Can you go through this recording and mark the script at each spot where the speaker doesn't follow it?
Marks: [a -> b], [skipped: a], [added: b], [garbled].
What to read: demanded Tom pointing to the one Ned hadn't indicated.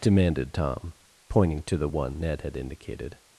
demanded Tom pointing to the one Ned [hadn't -> had] indicated.